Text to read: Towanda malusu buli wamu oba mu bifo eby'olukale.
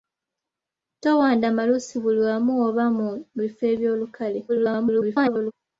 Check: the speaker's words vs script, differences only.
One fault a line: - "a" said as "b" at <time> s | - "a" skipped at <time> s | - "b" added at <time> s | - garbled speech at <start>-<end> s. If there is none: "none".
- garbled speech at 4.5-5.5 s